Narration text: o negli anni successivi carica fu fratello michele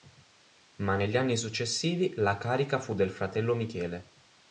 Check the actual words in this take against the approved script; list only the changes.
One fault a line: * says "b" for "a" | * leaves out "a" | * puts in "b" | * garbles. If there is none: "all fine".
* says "ma" for "o"
* puts in "la"
* puts in "del"